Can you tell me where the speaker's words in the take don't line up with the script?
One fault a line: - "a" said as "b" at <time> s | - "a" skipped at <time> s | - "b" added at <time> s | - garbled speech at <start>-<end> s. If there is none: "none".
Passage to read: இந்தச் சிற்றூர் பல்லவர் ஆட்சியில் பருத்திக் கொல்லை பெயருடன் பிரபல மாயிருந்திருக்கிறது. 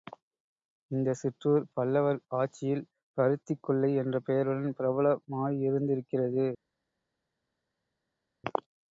- "என்ற" added at 4.0 s